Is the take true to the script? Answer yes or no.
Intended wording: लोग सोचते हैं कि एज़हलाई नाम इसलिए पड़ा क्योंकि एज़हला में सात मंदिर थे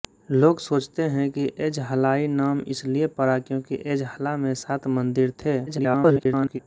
no